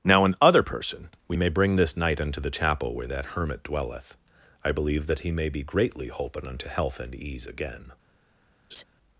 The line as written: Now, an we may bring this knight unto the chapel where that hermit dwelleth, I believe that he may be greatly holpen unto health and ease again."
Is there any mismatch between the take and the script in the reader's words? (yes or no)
yes